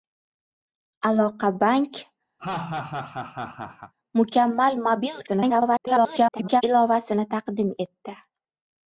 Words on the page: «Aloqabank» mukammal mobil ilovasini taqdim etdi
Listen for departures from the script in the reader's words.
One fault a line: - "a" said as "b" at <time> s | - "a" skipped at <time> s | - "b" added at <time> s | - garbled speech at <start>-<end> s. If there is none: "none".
- garbled speech at 5.3-6.6 s